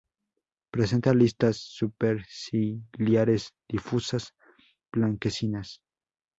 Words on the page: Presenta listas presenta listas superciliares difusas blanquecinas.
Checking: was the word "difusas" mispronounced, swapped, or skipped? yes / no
no